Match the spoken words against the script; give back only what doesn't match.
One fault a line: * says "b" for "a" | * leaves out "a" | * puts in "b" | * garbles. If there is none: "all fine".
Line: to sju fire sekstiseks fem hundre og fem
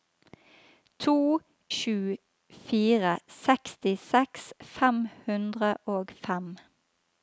all fine